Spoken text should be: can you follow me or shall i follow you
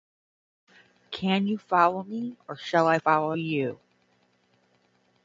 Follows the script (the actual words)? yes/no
yes